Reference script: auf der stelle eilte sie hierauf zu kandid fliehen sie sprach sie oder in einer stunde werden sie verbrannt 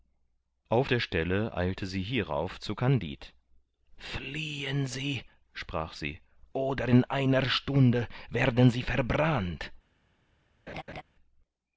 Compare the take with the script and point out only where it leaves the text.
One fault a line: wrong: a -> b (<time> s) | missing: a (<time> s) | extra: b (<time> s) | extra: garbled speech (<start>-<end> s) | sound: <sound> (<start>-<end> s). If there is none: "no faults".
sound: laugh (10.7-11.0 s)